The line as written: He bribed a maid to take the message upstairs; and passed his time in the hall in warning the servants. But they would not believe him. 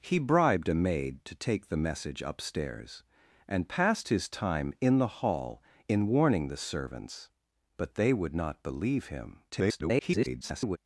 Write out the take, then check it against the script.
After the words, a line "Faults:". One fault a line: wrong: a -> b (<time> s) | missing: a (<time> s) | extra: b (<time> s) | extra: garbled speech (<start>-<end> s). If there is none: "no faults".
He bribed a maid to take the message upstairs; and passed his time in the hall in warning the servants. But they would not believe him. [garbled]
Faults:
extra: garbled speech (9.5-10.8 s)